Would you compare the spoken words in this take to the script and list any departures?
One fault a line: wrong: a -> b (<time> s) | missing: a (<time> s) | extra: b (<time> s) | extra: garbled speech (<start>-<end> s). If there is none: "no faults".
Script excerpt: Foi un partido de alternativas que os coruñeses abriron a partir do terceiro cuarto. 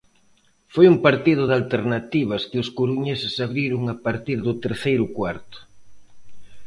no faults